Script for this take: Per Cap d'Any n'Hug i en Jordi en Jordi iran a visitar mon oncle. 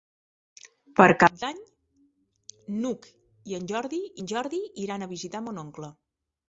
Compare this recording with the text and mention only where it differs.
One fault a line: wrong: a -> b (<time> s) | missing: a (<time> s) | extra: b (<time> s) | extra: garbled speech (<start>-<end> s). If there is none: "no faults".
no faults